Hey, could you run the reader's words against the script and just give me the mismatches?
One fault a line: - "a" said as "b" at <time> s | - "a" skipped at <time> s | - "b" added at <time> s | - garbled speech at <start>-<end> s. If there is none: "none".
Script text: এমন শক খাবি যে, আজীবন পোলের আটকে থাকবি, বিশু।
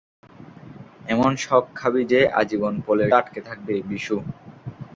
none